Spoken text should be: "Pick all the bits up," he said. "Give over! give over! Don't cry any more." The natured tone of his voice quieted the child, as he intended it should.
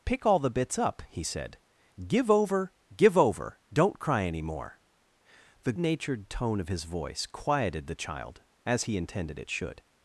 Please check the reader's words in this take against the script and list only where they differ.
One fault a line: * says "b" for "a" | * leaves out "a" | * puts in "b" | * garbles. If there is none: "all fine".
all fine